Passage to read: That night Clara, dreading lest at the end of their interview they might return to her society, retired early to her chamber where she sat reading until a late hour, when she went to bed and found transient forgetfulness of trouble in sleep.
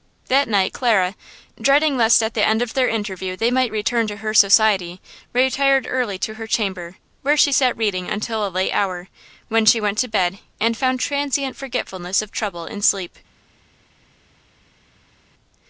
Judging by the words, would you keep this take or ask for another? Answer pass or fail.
pass